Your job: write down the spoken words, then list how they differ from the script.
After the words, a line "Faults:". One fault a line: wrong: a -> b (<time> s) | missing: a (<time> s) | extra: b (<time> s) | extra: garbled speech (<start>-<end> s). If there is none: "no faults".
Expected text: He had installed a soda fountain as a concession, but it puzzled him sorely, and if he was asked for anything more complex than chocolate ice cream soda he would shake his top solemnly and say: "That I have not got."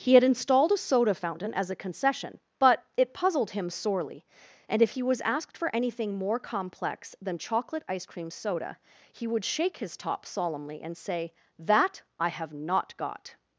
He had installed a soda fountain as a concession, but it puzzled him sorely, and if he was asked for anything more complex than chocolate ice cream soda he would shake his top solemnly and say: "That I have not got."
Faults:
no faults